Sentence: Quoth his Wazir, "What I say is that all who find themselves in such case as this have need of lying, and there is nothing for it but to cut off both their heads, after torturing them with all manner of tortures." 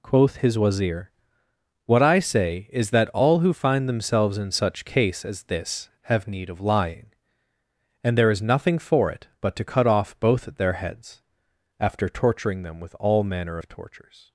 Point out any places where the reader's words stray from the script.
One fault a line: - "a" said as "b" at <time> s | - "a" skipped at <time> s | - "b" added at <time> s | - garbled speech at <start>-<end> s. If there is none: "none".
none